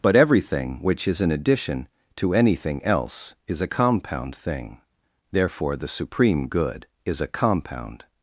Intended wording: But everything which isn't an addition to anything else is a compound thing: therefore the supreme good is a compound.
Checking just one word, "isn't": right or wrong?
wrong